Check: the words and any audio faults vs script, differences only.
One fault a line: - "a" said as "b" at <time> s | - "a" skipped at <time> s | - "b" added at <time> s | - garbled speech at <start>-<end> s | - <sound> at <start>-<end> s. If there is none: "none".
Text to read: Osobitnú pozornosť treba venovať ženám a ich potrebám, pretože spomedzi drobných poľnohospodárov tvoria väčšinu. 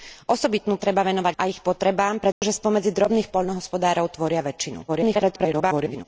- "pozornosť" skipped at 0.8 s
- "ženám" skipped at 1.4 s
- dropout at 2.3-2.4 s
- garbled speech at 4.9-6.1 s